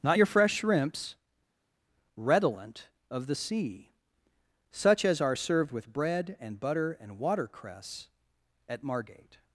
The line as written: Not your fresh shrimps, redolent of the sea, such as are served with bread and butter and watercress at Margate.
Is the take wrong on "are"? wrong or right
right